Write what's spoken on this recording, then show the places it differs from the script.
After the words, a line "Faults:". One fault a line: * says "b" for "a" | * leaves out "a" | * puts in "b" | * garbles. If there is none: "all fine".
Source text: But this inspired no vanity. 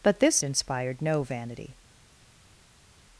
But this inspired no vanity.
Faults:
all fine